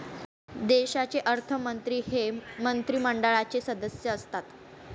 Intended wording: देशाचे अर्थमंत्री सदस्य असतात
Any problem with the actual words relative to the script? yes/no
yes